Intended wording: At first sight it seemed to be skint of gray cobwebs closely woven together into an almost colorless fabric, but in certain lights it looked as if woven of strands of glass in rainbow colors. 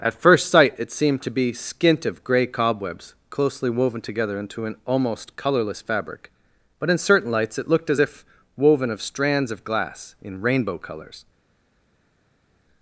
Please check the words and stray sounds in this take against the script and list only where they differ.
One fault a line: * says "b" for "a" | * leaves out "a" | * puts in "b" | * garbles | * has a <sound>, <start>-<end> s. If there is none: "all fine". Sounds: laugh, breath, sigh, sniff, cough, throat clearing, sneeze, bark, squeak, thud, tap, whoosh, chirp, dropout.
all fine